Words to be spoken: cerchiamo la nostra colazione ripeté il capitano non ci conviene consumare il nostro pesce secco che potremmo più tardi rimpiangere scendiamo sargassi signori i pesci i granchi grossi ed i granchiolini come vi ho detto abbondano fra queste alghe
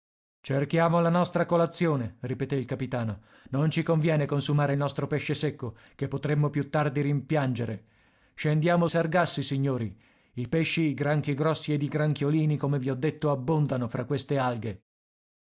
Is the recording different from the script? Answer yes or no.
no